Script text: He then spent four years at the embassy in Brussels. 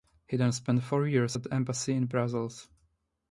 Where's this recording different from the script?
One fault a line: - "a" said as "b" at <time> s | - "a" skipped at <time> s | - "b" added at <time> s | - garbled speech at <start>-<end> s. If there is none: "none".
none